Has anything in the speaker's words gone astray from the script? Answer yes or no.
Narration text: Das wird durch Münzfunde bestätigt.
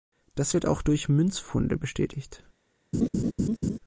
yes